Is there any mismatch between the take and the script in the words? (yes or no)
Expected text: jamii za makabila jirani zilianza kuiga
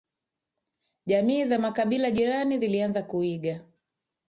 no